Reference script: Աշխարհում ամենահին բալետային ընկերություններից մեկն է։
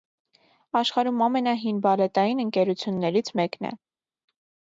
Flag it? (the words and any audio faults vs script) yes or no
no